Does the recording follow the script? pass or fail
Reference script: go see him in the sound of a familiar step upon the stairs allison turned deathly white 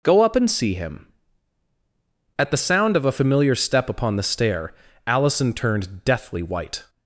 fail